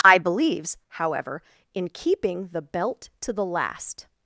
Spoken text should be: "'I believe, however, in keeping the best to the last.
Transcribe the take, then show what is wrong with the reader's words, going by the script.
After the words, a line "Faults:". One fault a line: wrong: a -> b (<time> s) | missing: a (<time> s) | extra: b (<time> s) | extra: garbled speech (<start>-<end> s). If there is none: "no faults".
"'I believes, however, in keeping the belt to the last.
Faults:
wrong: believe -> believes (0.2 s)
wrong: best -> belt (2.6 s)